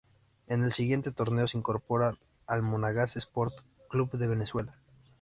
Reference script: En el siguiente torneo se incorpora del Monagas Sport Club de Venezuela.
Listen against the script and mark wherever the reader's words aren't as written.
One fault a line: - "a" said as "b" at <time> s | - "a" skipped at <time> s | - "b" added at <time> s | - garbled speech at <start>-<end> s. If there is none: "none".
- "del" said as "al" at 2.5 s